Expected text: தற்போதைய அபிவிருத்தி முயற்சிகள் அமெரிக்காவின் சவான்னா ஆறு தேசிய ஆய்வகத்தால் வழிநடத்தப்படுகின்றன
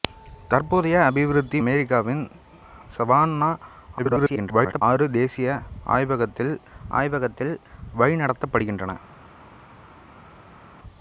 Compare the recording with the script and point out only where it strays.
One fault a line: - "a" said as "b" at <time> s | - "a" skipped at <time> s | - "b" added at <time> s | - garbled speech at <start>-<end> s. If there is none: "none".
- "முயற்சிகள்" skipped at 1.6 s
- garbled speech at 4.0-4.8 s
- "ஆய்வகத்தால்" added at 7.0 s